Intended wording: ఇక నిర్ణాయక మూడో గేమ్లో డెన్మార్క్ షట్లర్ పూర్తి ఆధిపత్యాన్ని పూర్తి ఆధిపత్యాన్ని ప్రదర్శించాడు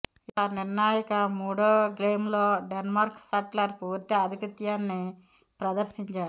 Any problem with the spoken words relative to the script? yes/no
yes